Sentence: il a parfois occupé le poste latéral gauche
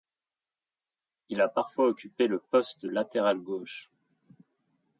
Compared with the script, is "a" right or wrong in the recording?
right